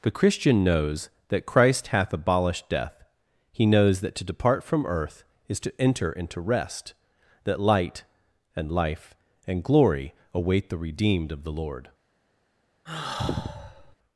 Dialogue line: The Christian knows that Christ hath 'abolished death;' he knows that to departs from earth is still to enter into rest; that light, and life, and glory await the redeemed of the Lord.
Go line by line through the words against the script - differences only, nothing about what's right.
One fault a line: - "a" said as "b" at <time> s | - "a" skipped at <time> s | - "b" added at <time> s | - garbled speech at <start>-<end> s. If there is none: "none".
- "departs" said as "depart" at 4.2 s
- "still" skipped at 5.6 s